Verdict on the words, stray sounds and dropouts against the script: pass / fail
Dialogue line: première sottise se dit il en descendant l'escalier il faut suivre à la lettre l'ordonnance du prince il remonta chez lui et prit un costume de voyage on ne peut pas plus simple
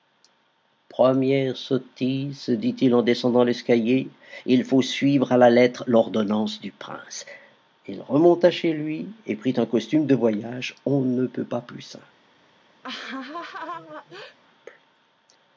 fail